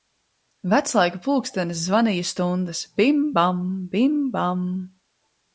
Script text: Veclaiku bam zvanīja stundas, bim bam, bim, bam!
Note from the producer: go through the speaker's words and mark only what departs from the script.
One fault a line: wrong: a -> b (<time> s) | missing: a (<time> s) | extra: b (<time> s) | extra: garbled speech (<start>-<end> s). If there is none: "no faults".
wrong: bam -> pulkstenis (1.3 s)